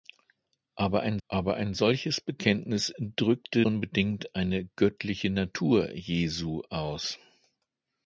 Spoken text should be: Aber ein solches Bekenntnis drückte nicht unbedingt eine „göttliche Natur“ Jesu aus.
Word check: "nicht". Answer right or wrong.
wrong